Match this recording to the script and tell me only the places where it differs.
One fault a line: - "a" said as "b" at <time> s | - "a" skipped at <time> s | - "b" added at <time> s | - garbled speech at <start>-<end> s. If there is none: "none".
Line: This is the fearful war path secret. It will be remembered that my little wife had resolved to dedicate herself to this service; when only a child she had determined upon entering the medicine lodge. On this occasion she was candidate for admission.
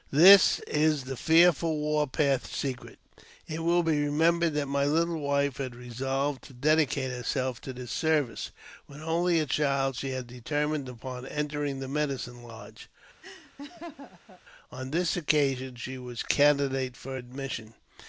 none